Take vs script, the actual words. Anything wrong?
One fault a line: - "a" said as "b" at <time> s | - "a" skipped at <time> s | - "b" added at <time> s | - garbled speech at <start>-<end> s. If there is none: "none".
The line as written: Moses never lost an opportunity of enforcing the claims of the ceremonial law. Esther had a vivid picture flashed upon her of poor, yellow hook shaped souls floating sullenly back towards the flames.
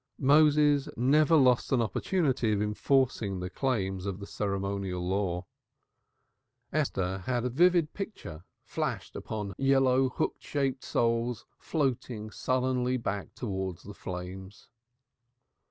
- "her of poor" skipped at 9.5 s